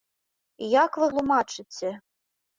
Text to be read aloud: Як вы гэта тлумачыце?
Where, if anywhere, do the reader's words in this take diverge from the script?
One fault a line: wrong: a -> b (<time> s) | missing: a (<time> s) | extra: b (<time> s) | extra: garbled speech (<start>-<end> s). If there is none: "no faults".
missing: гэта (1.1 s)